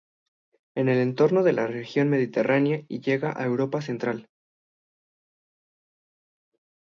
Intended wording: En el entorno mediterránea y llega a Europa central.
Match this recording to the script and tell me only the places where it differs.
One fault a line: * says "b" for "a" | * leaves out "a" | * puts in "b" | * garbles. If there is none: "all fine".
* puts in "de la región"